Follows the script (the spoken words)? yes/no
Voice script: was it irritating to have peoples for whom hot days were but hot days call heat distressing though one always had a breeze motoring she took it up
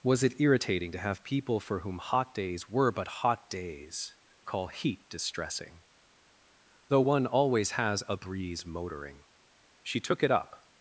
no